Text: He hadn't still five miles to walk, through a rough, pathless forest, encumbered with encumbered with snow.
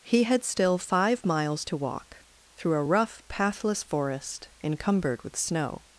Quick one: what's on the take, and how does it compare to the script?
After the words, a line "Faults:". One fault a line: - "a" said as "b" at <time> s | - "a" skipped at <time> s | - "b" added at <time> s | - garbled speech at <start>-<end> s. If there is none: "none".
He had still five miles to walk, through a rough, pathless forest, encumbered with snow.
Faults:
- "hadn't" said as "had" at 0.2 s
- "encumbered with" skipped at 5.4 s